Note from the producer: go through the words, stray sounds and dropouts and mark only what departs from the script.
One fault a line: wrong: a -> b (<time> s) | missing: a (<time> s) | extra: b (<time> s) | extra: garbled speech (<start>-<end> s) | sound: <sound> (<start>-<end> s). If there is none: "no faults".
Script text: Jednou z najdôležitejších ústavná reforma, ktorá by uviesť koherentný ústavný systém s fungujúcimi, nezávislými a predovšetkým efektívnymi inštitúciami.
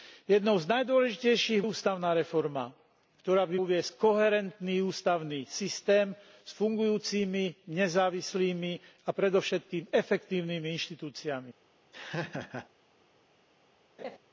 sound: laugh (11.9-12.7 s)
sound: laugh (14.0-14.2 s)